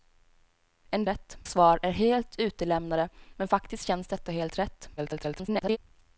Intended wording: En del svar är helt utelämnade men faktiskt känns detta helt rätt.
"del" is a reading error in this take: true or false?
true